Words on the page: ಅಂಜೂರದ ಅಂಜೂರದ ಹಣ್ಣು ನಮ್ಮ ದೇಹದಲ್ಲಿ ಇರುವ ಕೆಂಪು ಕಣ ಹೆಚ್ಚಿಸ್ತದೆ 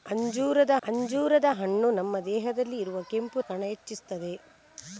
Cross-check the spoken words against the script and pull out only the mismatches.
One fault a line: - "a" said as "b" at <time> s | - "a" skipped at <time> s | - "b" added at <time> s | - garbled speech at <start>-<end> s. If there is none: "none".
none